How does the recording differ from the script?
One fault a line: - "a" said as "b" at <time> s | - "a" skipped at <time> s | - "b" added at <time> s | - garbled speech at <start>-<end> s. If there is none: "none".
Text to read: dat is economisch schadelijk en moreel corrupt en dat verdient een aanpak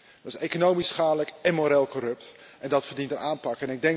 none